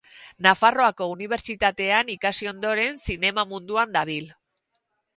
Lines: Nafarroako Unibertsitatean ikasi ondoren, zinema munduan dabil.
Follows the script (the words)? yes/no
yes